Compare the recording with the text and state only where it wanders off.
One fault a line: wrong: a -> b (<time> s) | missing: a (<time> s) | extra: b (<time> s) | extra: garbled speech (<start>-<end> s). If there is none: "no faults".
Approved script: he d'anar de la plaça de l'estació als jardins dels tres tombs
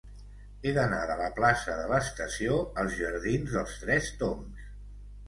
no faults